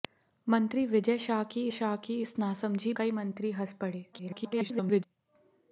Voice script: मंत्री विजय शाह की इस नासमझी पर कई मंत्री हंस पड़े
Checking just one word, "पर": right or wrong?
wrong